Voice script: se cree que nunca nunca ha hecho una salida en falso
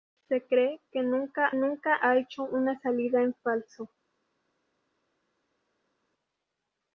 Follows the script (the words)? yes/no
yes